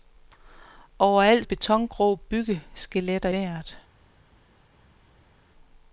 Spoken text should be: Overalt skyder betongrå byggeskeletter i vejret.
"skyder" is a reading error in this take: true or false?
true